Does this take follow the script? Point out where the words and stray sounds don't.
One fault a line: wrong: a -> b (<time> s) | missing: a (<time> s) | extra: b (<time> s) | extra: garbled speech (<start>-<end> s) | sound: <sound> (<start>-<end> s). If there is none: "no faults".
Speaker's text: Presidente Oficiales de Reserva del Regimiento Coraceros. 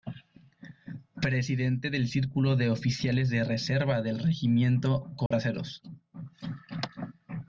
extra: del Círculo de (1.9 s)
sound: dropout (5.3-5.3 s)